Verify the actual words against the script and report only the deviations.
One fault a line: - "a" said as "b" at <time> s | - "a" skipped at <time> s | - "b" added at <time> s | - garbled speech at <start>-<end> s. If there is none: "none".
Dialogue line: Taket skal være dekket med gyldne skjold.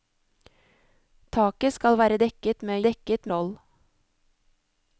- "gyldne" said as "dekket" at 2.9 s